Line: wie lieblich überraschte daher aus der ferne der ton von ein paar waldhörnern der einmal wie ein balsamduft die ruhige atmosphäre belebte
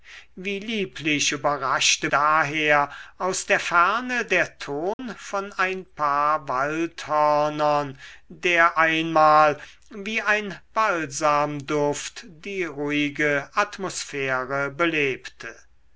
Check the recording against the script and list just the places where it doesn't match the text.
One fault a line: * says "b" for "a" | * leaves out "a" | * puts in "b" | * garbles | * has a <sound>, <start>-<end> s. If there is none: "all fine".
* has a dropout, 4.9-5.0 s